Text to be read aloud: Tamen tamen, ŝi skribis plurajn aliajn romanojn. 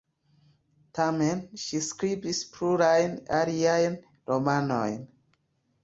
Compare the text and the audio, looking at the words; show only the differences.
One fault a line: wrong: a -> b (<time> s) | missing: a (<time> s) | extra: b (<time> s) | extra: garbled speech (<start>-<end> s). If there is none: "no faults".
missing: tamen (1.4 s)